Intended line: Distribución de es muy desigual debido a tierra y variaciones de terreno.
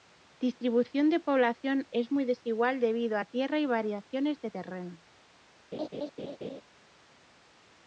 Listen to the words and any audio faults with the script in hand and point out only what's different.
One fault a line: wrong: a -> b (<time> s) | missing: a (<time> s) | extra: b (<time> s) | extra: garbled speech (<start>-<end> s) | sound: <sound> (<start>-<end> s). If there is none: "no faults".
extra: población (1.2 s)
sound: laugh (5.7-6.6 s)